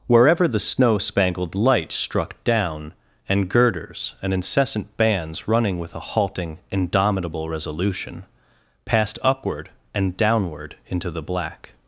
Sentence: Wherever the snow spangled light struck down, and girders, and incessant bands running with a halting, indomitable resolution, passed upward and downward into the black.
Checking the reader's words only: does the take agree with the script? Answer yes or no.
yes